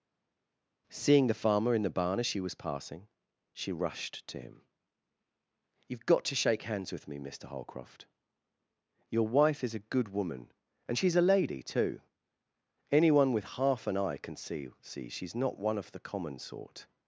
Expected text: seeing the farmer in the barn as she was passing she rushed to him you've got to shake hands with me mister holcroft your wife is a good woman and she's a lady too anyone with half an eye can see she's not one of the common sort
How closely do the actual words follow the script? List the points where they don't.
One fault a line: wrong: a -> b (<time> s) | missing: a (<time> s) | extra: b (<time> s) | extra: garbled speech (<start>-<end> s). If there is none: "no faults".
extra: see (14.8 s)